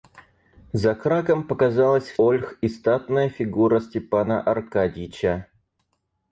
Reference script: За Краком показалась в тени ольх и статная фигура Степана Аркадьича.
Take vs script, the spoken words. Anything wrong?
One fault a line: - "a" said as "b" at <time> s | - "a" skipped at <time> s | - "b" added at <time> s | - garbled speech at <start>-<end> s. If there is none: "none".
- "тени" skipped at 2.2 s